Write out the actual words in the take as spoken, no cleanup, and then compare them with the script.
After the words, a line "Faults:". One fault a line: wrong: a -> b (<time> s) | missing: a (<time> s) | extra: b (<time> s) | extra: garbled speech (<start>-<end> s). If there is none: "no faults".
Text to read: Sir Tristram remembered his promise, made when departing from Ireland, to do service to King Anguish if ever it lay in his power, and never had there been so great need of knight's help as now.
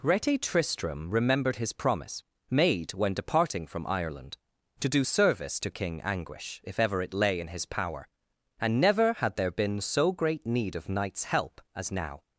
Rete Tristram remembered his promise, made when departing from Ireland, to do service to King Anguish if ever it lay in his power, and never had there been so great need of knight's help as now.
Faults:
wrong: Sir -> Rete (0.0 s)